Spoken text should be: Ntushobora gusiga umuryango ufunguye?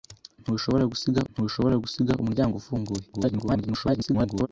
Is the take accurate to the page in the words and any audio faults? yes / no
no